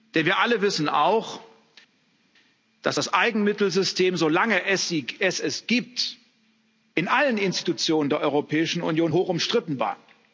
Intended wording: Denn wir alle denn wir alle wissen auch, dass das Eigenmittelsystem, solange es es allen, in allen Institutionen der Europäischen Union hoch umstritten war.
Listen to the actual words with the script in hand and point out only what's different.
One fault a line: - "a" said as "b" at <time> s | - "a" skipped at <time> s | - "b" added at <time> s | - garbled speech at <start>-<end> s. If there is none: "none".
- "denn wir alle" skipped at 0.6 s
- "allen" said as "gibt" at 5.7 s